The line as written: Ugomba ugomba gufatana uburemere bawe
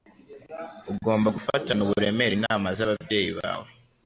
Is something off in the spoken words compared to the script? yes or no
yes